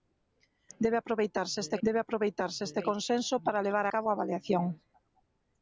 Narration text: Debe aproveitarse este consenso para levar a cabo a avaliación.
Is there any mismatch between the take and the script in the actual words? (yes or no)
yes